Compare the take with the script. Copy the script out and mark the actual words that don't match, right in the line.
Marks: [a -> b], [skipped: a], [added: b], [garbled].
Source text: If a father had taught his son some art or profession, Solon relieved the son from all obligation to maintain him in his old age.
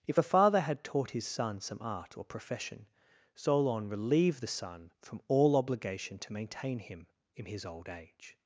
If a father had taught his son some art or profession, Solon relieved the son from all obligation to maintain him in his old age.